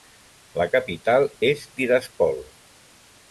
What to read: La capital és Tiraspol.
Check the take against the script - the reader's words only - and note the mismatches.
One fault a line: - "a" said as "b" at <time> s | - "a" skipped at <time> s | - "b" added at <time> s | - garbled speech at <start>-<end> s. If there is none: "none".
none